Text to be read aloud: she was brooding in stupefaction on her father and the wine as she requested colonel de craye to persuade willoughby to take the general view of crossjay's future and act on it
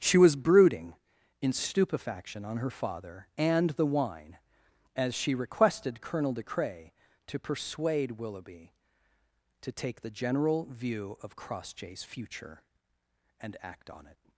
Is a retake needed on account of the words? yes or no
no